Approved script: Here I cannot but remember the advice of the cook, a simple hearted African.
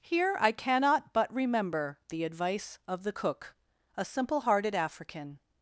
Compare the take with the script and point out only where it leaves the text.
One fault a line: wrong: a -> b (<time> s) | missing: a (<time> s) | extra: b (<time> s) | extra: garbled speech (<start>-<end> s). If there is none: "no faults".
no faults